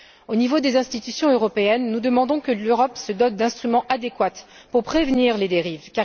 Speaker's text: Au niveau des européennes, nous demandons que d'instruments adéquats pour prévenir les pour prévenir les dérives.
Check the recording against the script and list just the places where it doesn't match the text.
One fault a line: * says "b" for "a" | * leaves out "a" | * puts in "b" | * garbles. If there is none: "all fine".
* puts in "institutions"
* says "l'Europe se dote d'instruments adéquats" for "d'instruments adéquats pour prévenir les"